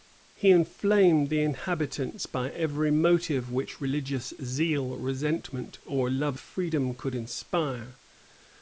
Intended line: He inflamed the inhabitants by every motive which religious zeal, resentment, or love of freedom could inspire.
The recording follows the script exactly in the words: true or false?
false